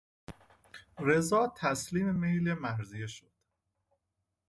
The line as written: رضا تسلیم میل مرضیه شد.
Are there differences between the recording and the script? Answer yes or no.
no